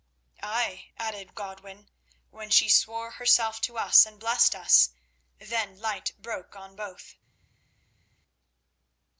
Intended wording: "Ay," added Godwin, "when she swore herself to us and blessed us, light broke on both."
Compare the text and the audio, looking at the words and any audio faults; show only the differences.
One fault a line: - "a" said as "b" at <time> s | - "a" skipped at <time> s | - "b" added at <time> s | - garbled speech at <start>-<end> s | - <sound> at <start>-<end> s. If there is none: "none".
- "then" added at 5.4 s